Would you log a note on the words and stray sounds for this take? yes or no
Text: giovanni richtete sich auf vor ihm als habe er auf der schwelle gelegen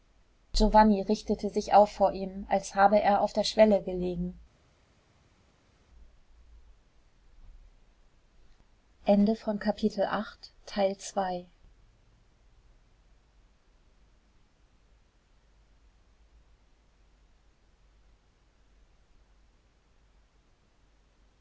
no